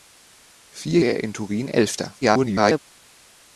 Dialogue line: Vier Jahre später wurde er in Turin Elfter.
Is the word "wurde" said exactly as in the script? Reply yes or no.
no